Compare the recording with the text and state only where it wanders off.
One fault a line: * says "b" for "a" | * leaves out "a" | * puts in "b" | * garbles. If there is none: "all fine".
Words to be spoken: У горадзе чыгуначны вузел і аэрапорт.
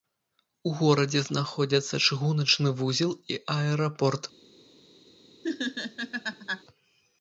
* puts in "знаходзяцца"